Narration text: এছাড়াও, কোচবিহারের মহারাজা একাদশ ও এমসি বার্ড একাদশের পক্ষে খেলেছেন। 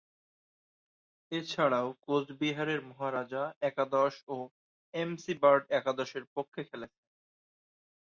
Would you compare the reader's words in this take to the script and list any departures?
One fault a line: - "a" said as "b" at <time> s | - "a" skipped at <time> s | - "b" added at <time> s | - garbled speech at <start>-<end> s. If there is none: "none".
none